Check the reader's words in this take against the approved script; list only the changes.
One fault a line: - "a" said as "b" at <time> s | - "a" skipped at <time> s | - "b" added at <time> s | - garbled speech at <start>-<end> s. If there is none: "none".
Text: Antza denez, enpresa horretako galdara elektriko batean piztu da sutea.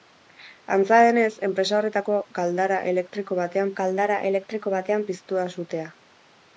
- "galdara elektriko batean" added at 3.8 s